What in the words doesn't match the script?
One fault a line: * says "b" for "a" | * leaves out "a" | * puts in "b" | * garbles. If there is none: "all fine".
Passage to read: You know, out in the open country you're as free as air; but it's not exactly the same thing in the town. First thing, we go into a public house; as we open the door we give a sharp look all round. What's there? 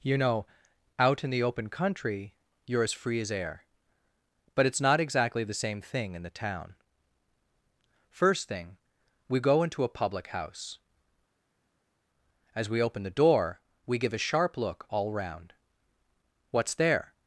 all fine